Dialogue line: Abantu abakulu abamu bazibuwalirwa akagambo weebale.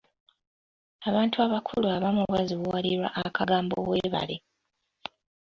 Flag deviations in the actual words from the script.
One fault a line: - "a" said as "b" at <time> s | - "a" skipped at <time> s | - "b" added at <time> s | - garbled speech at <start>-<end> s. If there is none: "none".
none